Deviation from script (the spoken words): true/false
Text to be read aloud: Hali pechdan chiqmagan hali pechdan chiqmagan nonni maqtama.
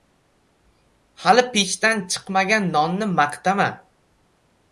true